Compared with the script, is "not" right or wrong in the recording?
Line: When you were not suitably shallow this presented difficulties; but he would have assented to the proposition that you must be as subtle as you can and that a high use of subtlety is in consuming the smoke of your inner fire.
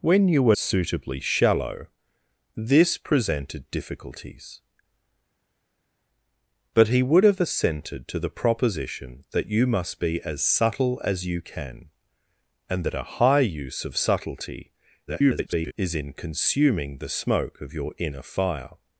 wrong